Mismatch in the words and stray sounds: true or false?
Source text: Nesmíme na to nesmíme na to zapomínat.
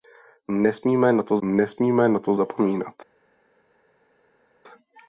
false